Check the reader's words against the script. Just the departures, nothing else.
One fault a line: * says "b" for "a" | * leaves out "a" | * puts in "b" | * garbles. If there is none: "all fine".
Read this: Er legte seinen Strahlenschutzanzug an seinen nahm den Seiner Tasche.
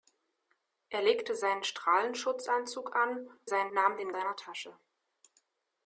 all fine